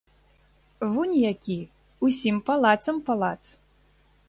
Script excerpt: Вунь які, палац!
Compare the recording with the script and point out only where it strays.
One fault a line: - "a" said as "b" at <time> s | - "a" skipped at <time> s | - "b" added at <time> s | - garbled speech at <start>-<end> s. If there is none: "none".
- "усім палацам" added at 2.1 s